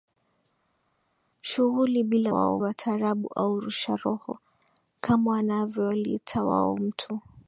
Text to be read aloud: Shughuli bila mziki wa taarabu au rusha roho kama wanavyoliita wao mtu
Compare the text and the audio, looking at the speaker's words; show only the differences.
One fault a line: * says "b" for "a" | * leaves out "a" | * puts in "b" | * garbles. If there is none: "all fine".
* says "wao" for "mziki"